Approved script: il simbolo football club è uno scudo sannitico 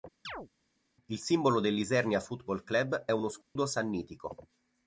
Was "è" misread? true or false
false